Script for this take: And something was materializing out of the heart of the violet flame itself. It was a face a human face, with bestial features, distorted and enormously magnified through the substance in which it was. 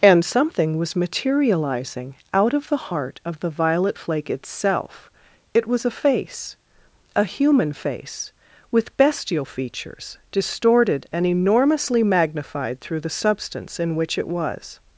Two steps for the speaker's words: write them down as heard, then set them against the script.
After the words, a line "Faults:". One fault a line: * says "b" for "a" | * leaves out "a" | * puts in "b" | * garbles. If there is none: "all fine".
And something was materializing out of the heart of the violet flake itself. It was a face a human face, with bestial features, distorted and enormously magnified through the substance in which it was.
Faults:
* says "flake" for "flame"